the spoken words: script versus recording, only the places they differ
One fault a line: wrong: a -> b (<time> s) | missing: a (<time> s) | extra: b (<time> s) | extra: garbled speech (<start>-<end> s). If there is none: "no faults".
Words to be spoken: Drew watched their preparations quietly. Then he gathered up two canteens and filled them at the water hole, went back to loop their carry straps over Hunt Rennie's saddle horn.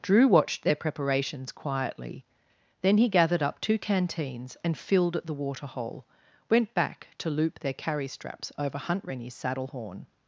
missing: them (5.2 s)